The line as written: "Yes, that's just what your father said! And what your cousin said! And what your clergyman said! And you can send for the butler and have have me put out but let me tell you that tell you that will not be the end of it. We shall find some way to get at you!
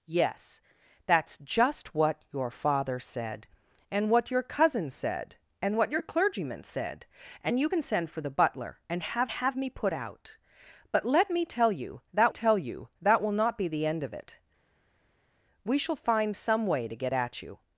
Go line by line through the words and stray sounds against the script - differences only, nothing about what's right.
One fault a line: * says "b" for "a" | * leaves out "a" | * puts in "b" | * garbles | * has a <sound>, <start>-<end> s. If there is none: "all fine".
all fine